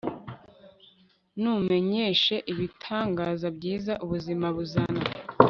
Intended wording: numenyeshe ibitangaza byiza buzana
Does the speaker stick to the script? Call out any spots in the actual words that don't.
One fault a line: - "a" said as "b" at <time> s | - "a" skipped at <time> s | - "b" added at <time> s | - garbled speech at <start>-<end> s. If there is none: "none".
- "ubuzima" added at 4.0 s